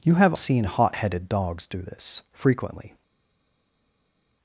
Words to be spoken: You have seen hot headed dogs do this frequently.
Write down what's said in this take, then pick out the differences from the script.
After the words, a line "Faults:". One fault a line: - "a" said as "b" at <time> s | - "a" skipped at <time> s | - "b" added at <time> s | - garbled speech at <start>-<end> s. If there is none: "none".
You have seen hot headed dogs do this frequently.
Faults:
none